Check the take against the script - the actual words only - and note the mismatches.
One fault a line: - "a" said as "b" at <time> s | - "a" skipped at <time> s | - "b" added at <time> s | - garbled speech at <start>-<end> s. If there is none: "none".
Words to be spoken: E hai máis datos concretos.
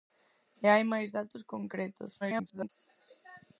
- garbled speech at 2.2-2.7 s